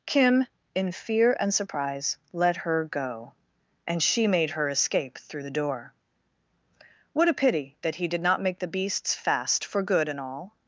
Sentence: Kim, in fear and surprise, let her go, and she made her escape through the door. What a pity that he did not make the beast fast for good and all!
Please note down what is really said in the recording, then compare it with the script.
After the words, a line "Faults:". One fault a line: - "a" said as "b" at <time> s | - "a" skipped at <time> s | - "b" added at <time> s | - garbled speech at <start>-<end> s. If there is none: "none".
Kim, in fear and surprise, let her go, and she made her escape through the door. What a pity that he did not make the beasts fast for good and all!
Faults:
- "beast" said as "beasts" at 8.7 s